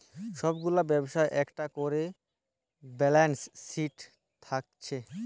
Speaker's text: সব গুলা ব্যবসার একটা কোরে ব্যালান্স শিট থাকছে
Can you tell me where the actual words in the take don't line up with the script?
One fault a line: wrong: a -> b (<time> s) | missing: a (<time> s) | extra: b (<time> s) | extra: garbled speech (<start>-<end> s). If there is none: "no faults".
no faults